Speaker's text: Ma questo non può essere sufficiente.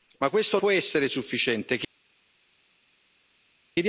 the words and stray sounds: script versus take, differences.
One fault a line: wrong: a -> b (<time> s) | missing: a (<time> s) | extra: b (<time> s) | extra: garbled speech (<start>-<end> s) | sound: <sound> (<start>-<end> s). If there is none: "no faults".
missing: non (0.6 s)